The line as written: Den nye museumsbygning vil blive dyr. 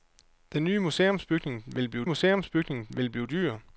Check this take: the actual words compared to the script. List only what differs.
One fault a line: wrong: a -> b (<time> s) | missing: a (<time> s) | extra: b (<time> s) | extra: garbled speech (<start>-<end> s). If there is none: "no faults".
extra: museumsbygning vil blive (2.0 s)